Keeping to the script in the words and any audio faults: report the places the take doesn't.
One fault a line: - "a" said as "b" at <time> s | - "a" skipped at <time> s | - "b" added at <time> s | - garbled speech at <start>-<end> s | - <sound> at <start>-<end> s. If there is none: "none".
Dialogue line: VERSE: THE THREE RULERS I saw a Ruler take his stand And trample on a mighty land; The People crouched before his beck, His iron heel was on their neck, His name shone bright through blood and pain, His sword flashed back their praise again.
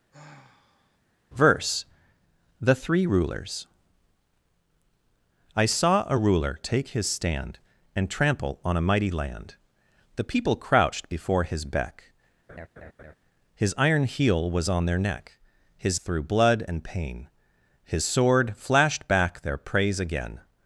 - sigh at 0.1-1.0 s
- laugh at 12.5-13.2 s
- "name shone bright" skipped at 16.0 s